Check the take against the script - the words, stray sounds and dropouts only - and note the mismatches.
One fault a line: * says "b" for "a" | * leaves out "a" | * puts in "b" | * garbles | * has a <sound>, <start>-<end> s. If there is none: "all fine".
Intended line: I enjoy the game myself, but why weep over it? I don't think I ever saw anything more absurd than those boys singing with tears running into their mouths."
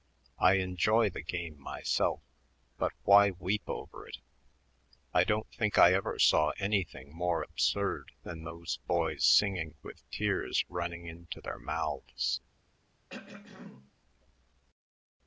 * has a throat clearing, 13.1-13.9 s